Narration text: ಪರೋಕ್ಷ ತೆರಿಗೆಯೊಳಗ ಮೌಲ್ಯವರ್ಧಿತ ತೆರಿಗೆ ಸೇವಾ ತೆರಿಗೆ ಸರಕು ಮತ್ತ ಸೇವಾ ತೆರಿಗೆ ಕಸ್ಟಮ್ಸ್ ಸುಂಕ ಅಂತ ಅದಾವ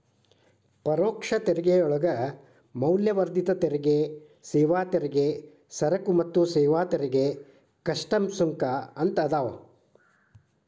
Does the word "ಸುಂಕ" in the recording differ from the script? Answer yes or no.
no